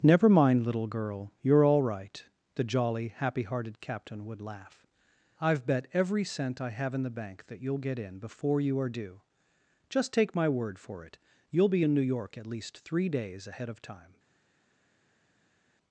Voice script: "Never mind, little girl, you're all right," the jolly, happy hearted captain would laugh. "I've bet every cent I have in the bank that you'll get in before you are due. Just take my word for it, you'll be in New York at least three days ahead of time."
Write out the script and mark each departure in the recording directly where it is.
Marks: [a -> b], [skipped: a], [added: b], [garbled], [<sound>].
"Never mind, little girl, you're all right," the jolly, happy hearted captain would laugh. "I've bet every cent I have in the bank that you'll get in before you are due. Just take my word for it, you'll be in New York at least three days ahead of time."